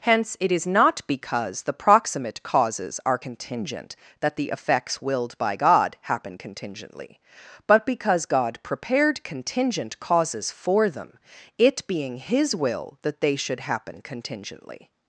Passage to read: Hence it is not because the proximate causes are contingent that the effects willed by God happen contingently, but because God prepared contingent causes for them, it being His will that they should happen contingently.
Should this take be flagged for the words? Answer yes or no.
no